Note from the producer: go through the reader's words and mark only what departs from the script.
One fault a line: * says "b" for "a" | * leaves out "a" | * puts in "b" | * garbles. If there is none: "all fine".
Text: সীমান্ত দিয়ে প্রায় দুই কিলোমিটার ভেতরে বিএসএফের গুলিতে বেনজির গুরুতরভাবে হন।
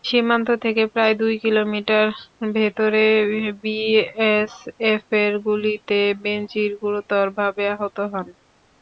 * says "থেকে" for "দিয়ে"
* puts in "আহত"